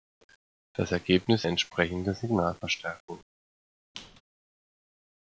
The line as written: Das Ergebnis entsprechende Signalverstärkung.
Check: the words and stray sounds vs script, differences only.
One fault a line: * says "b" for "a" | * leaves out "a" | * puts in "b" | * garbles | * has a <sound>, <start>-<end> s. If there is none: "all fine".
* has a squeak, 3.9-4.2 s